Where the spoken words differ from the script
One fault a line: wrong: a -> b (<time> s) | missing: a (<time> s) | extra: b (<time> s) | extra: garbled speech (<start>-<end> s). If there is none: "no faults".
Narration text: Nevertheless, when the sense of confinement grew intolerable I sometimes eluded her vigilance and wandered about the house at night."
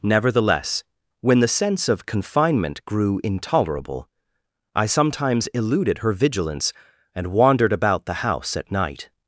no faults